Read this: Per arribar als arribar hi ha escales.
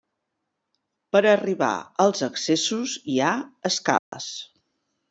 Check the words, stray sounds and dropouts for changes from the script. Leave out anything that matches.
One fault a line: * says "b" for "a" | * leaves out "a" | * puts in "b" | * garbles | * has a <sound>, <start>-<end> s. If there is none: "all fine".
* says "accessos" for "arribar"
* has a dropout, 4.0-4.1 s